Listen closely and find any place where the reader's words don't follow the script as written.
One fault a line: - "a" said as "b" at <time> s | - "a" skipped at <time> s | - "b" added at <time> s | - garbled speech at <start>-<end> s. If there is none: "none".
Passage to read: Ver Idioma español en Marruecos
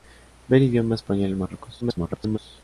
- garbled speech at 1.8-2.4 s